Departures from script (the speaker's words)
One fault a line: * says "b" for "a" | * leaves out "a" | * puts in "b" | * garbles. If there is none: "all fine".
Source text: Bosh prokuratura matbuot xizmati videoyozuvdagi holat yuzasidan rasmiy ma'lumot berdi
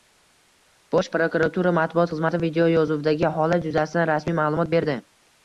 all fine